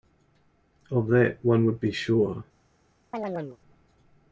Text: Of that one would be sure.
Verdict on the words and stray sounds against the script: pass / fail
fail